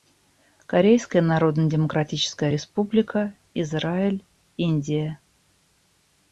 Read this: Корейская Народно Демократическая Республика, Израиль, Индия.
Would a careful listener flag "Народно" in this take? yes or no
no